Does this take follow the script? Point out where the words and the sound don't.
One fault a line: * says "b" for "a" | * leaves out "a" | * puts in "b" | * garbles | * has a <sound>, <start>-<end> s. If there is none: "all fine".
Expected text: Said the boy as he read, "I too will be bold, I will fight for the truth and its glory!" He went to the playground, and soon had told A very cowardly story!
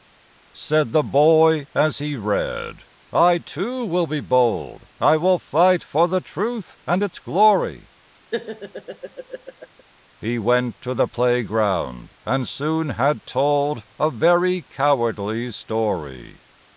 * has a laugh, 8.3-9.8 s